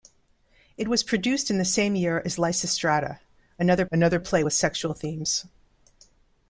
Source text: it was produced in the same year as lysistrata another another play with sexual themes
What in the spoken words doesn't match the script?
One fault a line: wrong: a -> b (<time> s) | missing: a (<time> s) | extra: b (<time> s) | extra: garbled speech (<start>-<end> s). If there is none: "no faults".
no faults